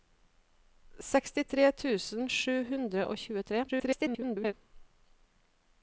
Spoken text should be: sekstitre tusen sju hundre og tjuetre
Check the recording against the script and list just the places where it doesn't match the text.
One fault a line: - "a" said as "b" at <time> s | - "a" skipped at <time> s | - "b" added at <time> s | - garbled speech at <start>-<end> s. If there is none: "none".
- garbled speech at 3.7-4.5 s